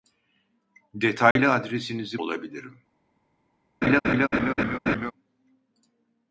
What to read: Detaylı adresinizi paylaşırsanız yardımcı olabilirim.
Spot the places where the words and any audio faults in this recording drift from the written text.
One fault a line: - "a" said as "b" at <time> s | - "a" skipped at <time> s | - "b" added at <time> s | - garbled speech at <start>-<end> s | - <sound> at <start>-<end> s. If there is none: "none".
- dropout at 1.3-1.4 s
- "paylaşırsanız yardımcı" skipped at 2.2 s
- laugh at 3.8-5.1 s